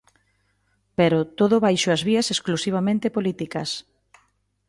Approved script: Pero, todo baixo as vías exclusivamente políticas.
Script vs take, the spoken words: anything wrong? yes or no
no